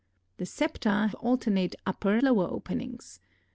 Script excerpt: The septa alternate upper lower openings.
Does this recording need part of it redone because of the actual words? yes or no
no